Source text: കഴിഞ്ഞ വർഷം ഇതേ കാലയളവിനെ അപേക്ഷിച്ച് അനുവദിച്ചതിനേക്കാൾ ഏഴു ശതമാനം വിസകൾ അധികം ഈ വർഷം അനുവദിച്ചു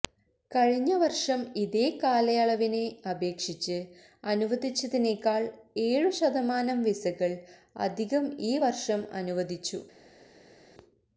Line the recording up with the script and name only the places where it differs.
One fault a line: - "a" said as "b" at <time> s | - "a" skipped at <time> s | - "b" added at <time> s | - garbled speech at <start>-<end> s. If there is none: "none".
none